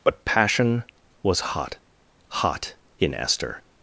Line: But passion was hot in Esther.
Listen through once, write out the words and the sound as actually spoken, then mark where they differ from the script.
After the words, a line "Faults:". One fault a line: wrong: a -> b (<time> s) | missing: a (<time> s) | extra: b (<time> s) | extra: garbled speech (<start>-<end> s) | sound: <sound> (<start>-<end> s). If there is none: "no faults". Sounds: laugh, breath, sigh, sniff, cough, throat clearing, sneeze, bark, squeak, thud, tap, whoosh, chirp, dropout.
But passion was hot hot in Esther.
Faults:
extra: hot (2.3 s)